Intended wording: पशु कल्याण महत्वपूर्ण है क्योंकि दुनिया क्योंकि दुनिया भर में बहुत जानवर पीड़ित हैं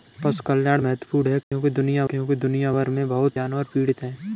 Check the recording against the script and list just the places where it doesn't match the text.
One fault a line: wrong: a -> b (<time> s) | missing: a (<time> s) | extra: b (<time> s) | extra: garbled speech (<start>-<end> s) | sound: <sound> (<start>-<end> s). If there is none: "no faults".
sound: dropout (1.4-1.5 s)